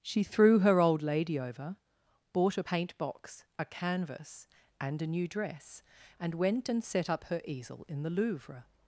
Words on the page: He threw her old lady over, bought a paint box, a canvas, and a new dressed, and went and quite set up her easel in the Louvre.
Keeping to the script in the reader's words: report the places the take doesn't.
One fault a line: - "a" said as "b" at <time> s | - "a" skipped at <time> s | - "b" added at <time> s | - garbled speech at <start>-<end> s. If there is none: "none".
- "He" said as "She" at 0.0 s
- "dressed" said as "dress" at 5.3 s
- "quite" skipped at 6.8 s